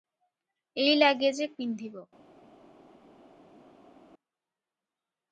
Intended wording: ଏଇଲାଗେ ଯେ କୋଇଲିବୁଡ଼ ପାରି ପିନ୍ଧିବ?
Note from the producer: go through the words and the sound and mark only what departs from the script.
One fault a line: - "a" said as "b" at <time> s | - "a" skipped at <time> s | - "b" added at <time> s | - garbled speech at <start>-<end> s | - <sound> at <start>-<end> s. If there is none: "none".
- "କୋଇଲିବୁଡ଼ ପାରି" skipped at 1.5 s